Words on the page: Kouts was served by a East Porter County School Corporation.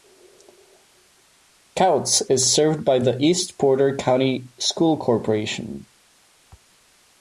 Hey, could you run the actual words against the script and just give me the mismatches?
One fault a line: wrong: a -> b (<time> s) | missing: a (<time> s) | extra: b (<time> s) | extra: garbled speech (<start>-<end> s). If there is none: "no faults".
wrong: was -> is (2.3 s)
wrong: a -> the (3.0 s)